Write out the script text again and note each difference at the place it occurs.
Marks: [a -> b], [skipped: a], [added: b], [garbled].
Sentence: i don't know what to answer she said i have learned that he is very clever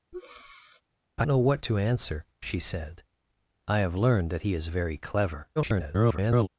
i [skipped: don't] know what to answer she said i have learned that he is very clever [garbled]